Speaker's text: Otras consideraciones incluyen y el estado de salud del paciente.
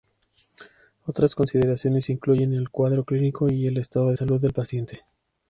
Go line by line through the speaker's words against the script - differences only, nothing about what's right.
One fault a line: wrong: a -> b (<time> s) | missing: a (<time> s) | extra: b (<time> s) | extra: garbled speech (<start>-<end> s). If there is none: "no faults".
extra: el cuadro clínico (2.6 s)